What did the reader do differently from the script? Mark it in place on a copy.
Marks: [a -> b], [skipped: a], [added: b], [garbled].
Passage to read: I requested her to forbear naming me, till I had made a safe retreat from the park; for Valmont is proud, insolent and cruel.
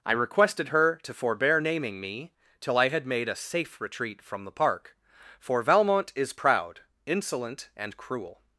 I requested her to forbear naming me, till I had made a safe retreat from the park; for Valmont is proud, insolent and cruel.